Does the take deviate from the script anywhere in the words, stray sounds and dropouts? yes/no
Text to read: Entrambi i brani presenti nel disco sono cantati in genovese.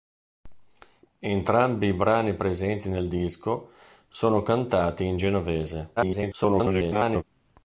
yes